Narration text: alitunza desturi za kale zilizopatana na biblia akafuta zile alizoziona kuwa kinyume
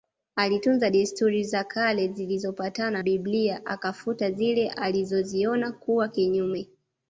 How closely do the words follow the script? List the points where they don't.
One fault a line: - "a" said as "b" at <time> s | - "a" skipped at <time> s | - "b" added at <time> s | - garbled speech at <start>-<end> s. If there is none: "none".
- "na" skipped at 3.0 s